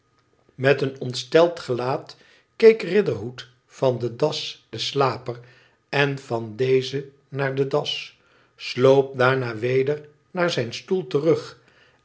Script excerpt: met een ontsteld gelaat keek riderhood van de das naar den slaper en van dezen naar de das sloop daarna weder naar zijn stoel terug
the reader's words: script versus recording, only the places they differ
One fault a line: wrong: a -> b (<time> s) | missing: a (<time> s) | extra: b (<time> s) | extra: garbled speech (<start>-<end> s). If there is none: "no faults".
missing: naar (4.7 s)